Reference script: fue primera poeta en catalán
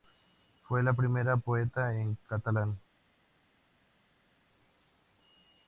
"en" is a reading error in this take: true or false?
false